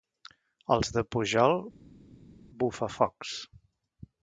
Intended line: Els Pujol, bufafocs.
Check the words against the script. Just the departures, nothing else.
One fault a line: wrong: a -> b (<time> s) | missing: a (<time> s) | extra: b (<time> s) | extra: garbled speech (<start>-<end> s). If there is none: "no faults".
extra: de (0.9 s)